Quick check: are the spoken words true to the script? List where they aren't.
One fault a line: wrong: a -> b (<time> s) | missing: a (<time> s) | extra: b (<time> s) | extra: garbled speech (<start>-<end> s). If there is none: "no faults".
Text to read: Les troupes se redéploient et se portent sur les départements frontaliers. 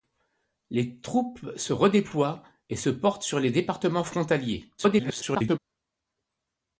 extra: garbled speech (4.8-5.6 s)